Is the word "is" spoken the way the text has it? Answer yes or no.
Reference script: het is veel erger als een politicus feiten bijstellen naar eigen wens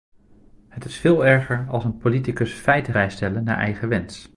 yes